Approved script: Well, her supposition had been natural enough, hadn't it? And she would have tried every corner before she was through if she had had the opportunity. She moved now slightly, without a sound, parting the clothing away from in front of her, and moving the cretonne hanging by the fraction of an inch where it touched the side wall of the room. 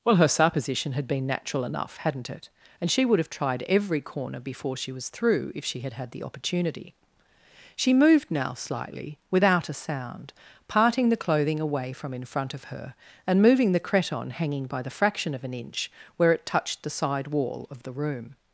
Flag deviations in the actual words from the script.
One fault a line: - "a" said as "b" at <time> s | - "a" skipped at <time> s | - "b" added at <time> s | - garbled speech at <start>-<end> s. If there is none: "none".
none